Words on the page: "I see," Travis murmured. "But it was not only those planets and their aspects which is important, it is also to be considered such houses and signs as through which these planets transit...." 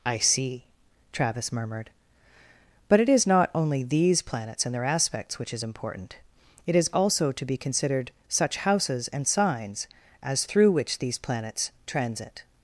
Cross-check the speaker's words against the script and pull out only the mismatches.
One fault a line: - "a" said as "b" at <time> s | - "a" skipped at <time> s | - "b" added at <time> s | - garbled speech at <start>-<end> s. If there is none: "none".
- "was" said as "is" at 3.1 s
- "those" said as "these" at 3.8 s